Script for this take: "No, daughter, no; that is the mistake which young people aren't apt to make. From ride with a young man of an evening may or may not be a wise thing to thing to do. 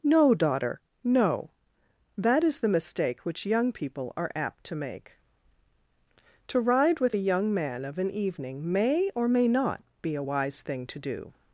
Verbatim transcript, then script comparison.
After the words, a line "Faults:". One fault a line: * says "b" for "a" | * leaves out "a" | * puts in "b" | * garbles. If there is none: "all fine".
"No, daughter, no; that is the mistake which young people are apt to make. To ride with a young man of an evening may or may not be a wise thing to do.
Faults:
* says "are" for "aren't"
* says "To" for "From"
* leaves out "thing to"